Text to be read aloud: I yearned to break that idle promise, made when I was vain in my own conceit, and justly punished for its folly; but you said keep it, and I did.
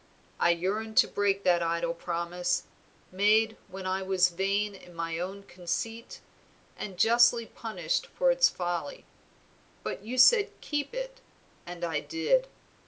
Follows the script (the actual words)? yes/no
yes